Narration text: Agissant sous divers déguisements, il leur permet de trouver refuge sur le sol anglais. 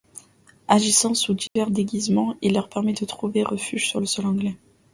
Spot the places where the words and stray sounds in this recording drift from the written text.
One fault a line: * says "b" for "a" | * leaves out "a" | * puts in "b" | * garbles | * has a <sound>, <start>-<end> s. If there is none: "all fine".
* has a dropout, 1.5-1.6 s